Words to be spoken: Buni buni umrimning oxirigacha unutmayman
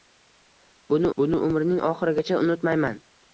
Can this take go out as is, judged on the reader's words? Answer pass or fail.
pass